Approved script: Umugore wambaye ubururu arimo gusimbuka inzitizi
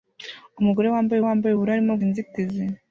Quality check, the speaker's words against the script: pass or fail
fail